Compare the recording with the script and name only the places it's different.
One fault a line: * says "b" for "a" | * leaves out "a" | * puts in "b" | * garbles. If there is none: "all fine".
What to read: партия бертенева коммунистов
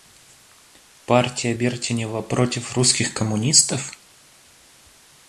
* puts in "против русских"